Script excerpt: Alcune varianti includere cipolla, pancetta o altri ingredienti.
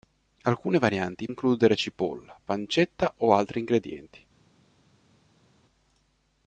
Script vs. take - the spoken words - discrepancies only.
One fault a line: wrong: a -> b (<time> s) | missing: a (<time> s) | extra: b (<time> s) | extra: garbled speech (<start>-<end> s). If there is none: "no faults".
no faults